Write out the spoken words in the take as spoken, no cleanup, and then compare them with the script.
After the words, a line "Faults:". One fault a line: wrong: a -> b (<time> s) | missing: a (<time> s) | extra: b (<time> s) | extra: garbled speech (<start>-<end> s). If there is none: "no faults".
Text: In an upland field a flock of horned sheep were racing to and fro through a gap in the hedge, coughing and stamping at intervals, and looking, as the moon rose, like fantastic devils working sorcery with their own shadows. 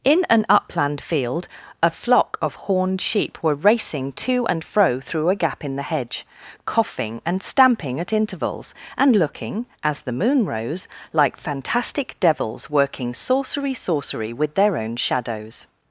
In an upland field a flock of horned sheep were racing to and fro through a gap in the hedge, coughing and stamping at intervals, and looking, as the moon rose, like fantastic devils working sorcery sorcery with their own shadows.
Faults:
extra: sorcery (13.8 s)